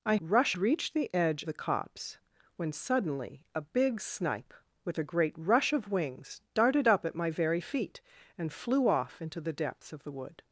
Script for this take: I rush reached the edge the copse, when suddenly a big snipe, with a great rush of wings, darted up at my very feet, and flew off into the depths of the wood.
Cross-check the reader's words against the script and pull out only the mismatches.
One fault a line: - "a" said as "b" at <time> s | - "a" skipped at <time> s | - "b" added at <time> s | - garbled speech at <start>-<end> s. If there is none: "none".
none